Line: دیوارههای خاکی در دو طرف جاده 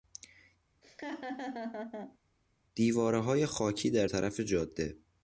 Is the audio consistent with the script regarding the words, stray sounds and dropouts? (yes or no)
no